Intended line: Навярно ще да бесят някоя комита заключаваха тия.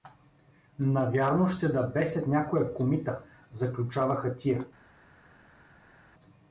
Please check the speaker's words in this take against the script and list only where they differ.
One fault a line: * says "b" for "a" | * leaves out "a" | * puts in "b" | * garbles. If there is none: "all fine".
all fine